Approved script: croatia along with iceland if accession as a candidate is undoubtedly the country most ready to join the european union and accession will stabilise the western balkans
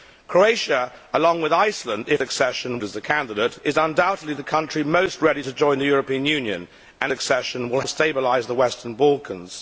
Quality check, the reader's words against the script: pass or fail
pass